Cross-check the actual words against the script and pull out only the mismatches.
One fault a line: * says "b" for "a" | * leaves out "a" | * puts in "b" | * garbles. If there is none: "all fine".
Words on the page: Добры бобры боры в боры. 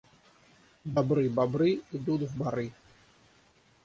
* says "идут" for "боры"